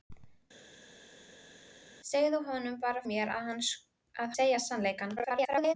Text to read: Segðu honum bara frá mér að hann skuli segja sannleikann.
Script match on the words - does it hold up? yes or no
no